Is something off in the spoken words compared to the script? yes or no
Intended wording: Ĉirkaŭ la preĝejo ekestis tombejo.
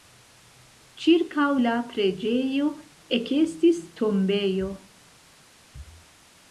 no